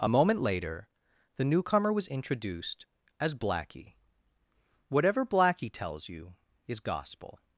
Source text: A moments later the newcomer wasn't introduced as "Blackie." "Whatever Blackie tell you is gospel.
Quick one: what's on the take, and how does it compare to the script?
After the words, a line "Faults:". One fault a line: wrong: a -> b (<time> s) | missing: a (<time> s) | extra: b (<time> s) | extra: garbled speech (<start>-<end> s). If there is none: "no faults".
A moment later the newcomer was introduced as "Blackie." "Whatever Blackie tells you is gospel.
Faults:
wrong: moments -> moment (0.1 s)
wrong: wasn't -> was (1.9 s)
wrong: tell -> tells (5.7 s)